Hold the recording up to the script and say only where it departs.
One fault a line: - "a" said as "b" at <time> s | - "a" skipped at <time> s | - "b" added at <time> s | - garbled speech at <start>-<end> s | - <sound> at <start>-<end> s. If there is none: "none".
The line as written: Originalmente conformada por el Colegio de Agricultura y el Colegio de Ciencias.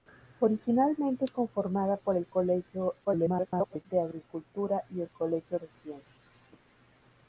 - garbled speech at 3.0-3.9 s